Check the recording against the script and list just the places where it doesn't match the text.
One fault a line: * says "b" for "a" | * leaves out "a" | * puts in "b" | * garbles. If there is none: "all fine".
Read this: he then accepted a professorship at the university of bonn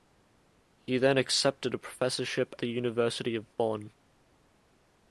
* leaves out "at"